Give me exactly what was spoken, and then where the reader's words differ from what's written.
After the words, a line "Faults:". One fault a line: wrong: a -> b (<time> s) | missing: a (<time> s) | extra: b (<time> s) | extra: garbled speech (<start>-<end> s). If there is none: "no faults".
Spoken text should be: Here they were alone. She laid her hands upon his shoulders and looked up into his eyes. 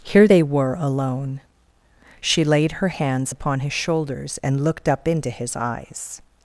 Here they were alone. She laid her hands upon his shoulders and looked up into his eyes.
Faults:
no faults